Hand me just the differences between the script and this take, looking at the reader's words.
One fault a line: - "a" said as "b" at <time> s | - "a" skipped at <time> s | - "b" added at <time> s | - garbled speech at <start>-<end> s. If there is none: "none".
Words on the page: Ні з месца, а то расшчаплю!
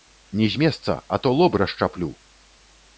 - "лоб" added at 1.4 s